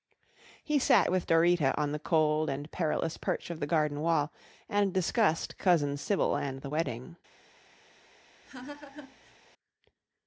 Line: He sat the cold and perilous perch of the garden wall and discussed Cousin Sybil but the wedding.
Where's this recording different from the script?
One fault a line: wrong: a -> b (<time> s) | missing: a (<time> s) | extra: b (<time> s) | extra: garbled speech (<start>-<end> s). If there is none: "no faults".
extra: with Dorita on (1.1 s)
wrong: but -> and (6.3 s)